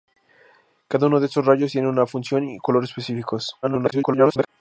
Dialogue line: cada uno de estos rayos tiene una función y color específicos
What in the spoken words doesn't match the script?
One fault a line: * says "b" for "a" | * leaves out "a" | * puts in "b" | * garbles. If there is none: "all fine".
* garbles